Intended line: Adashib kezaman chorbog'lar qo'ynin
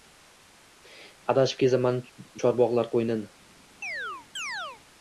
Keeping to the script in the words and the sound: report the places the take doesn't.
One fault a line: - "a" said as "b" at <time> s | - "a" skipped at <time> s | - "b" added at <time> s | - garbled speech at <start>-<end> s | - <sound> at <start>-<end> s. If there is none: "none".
- chirp at 3.8-4.8 s